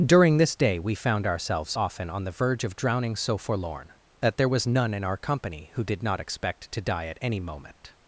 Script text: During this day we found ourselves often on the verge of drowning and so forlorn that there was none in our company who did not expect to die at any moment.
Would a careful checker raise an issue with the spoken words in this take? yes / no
yes